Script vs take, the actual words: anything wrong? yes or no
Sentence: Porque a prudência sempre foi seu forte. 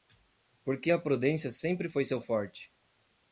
no